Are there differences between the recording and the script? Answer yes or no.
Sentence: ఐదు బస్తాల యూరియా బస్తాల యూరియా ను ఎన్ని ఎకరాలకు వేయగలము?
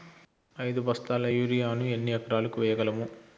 yes